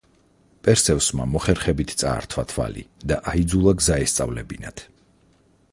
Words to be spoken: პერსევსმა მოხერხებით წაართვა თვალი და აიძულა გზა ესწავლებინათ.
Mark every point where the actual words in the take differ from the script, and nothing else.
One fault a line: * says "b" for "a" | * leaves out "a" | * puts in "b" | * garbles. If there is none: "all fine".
all fine